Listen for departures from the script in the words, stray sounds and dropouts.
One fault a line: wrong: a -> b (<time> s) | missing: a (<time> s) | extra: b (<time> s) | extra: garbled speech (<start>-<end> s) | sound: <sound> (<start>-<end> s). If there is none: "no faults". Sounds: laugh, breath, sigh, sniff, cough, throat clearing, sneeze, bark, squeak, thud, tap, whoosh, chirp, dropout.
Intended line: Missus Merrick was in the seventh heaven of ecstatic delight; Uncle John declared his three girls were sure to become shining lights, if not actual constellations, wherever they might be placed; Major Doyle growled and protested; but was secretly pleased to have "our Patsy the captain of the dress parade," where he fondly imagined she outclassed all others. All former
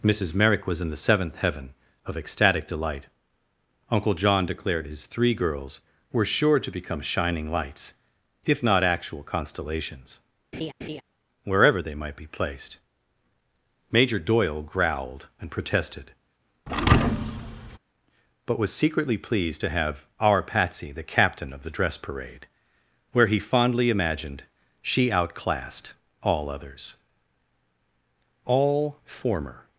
sound: laugh (10.5-11.0 s)
sound: thud (16.7-17.8 s)